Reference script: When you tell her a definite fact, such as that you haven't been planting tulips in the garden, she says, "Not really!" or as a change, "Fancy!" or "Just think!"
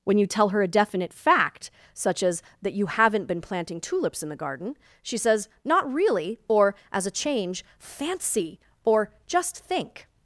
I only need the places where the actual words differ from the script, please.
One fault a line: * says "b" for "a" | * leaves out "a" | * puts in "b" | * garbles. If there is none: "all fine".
all fine